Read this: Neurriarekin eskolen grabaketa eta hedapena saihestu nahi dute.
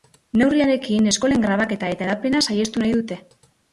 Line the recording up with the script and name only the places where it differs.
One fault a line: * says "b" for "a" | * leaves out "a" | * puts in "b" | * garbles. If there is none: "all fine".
all fine